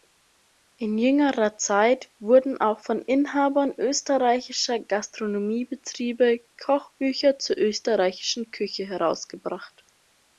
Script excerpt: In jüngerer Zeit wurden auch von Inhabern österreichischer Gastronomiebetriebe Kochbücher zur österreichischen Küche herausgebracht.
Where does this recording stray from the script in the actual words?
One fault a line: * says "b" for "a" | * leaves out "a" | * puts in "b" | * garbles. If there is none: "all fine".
all fine